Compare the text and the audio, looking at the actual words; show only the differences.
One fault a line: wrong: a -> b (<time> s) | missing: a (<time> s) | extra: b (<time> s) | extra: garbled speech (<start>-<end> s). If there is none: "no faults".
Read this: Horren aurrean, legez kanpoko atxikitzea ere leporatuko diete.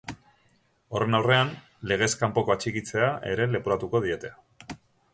no faults